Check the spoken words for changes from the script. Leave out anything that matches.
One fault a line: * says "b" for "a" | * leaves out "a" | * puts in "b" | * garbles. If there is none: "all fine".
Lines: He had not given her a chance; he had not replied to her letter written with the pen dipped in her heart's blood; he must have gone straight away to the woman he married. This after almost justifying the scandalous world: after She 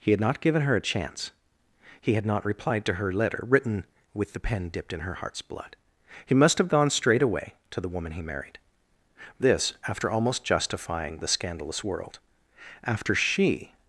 all fine